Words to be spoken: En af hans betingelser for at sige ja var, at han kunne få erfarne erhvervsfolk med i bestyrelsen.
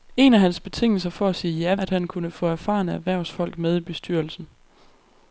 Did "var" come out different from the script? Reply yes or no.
yes